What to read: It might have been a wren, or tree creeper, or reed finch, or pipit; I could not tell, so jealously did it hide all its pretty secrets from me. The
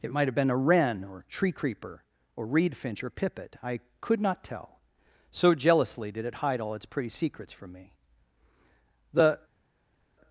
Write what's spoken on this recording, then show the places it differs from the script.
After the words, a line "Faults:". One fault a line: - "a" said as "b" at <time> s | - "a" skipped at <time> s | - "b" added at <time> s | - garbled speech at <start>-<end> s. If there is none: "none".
It might have been a wren, or tree creeper, or reed finch, or pipit; I could not tell, so jealously did it hide all its pretty secrets from me. The
Faults:
none